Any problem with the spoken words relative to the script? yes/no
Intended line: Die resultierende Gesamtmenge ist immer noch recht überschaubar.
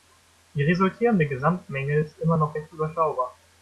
no